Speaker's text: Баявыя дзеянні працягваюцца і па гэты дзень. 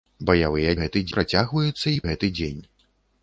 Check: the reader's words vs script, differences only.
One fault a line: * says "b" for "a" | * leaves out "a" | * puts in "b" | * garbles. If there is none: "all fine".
* says "гэты" for "дзеянні"
* leaves out "па"